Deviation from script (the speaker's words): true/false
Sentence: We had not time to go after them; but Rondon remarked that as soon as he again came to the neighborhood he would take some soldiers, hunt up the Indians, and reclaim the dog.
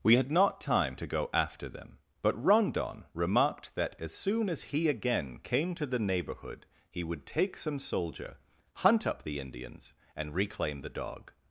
true